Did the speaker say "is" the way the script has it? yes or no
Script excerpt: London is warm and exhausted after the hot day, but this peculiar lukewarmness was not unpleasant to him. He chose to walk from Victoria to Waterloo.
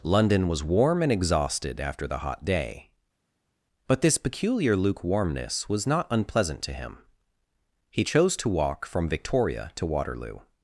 no